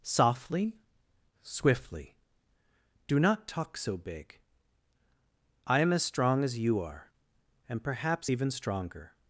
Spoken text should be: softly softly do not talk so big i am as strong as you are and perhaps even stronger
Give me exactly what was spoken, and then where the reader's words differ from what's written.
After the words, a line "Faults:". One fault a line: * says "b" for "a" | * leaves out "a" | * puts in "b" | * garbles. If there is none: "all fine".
softly swiftly do not talk so big i am as strong as you are and perhaps even stronger
Faults:
* says "swiftly" for "softly"